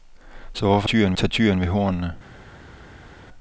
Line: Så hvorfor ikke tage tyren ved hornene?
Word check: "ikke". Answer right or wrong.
wrong